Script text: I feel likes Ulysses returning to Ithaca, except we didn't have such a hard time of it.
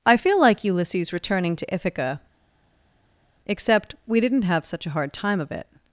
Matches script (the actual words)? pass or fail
fail